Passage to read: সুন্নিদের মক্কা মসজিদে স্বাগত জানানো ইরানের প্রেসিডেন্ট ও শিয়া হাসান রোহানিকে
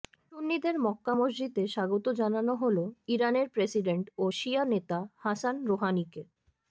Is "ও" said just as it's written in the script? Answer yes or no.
yes